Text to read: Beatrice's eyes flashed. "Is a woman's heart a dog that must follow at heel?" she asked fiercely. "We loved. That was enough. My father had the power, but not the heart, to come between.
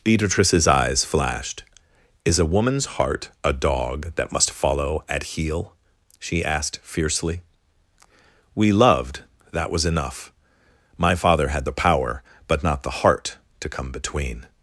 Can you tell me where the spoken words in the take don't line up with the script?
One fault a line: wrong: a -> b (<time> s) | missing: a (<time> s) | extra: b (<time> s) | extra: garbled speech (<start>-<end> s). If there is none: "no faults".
no faults